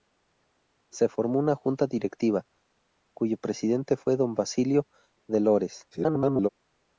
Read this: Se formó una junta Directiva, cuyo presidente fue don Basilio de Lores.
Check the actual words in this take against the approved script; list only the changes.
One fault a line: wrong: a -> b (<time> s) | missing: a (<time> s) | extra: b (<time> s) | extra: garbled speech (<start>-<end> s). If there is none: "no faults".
extra: garbled speech (5.9-6.5 s)